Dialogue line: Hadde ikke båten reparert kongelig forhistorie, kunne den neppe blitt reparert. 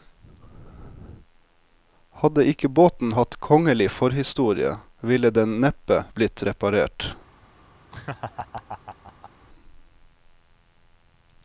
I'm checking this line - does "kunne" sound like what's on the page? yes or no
no